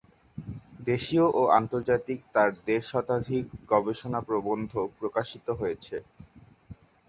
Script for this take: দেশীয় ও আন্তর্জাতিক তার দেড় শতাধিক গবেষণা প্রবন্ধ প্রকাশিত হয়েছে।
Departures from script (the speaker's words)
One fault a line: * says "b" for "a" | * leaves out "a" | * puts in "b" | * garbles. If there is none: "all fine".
all fine